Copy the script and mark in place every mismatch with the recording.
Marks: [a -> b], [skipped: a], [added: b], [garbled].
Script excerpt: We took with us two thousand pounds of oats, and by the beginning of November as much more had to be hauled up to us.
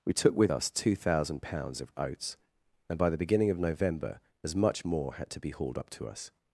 We took with us two thousand pounds of oats, and by the beginning of November as much more had to be hauled up to us.